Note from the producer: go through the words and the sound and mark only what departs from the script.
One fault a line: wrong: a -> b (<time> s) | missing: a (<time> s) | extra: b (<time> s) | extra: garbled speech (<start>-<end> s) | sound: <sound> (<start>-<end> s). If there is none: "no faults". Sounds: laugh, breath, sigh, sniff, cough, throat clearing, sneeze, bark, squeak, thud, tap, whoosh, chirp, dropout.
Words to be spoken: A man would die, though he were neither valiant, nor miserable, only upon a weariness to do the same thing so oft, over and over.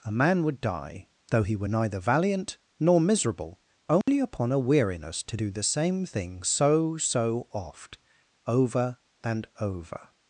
sound: dropout (4.0-4.1 s)
extra: so (7.0 s)